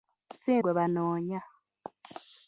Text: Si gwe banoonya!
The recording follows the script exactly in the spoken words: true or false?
true